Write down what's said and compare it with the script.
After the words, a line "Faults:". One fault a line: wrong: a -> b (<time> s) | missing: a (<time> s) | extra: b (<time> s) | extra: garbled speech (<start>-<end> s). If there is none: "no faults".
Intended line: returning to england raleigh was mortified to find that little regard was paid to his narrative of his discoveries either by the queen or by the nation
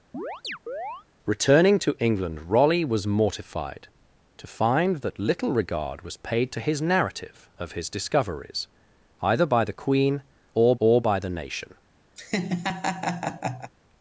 returning to england raleigh was mortified to find that little regard was paid to his narrative of his discoveries either by the queen or or by the nation
Faults:
extra: or (10.8 s)